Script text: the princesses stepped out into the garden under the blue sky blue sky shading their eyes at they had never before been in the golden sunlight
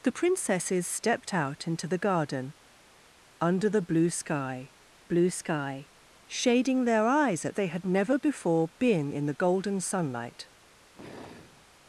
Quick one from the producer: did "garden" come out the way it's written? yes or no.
yes